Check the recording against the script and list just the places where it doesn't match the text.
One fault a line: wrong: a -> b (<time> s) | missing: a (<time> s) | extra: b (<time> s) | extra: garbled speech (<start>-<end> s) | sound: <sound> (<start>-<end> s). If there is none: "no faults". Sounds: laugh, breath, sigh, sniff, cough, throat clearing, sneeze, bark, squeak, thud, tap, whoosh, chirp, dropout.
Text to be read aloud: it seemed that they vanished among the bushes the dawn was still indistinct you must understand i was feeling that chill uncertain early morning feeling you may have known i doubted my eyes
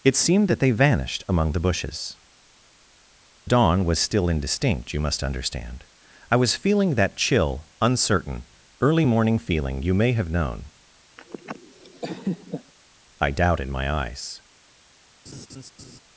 missing: the (2.2 s)
sound: laugh (11.2-12.7 s)
sound: laugh (15.3-16.0 s)